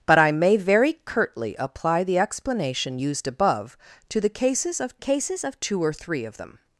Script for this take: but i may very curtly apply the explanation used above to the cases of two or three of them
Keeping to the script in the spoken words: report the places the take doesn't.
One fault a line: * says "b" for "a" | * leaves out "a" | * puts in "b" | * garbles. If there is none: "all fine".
* puts in "cases of"